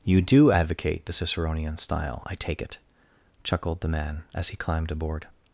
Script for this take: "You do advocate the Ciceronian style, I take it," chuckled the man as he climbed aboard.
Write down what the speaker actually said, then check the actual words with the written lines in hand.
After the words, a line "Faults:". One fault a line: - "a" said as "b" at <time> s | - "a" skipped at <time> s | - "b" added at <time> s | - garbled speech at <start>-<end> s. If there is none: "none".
"You do advocate the Ciceronian style, I take it," chuckled the man as he climbed aboard.
Faults:
none